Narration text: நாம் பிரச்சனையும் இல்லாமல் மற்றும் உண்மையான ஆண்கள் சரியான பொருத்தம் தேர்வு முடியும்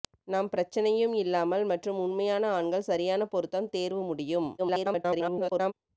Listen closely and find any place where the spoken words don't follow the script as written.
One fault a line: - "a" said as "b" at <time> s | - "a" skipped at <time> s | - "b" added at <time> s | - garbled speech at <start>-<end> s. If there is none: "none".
- garbled speech at 4.6-5.7 s